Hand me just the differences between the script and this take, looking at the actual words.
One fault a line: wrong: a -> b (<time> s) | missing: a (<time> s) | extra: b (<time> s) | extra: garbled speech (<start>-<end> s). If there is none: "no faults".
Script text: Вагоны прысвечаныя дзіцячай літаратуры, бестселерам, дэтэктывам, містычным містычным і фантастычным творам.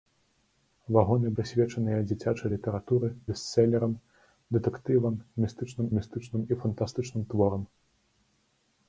no faults